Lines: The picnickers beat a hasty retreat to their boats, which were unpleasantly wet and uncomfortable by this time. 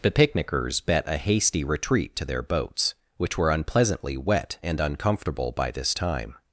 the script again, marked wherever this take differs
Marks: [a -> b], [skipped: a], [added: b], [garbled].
The picnickers [beat -> bet] a hasty retreat to their boats, which were unpleasantly wet and uncomfortable by this time.